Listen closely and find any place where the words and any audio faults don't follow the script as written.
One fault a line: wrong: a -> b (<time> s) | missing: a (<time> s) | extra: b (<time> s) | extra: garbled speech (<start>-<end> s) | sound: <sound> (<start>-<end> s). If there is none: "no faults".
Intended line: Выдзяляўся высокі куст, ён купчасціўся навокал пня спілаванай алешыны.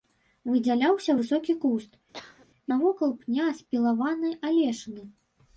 missing: ён купчасціўся (1.9 s)
sound: cough (2.1-2.5 s)